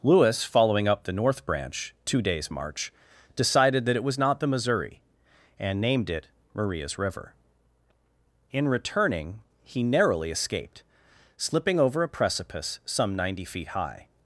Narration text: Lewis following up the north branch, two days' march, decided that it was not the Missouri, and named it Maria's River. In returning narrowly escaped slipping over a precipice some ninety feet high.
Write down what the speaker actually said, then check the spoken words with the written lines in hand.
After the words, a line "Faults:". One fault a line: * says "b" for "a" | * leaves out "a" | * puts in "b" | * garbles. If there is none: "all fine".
Lewis following up the north branch, two days' march, decided that it was not the Missouri, and named it Maria's River. In returning he narrowly escaped slipping over a precipice some ninety feet high.
Faults:
* puts in "he"